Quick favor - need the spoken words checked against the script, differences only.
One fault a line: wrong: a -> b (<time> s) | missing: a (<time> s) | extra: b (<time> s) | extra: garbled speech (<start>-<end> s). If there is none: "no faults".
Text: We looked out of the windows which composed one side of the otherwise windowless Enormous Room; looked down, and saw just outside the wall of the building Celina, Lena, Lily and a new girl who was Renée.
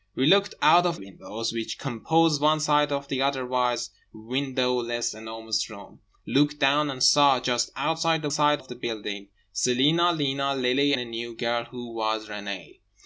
missing: the (1.0 s)
wrong: wall -> side (8.3 s)
missing: and (10.9 s)